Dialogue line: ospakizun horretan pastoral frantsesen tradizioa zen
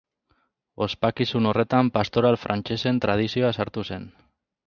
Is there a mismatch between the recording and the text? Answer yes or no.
yes